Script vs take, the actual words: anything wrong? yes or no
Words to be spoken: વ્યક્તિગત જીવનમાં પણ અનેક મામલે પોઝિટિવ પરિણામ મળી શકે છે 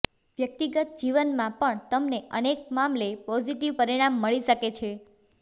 yes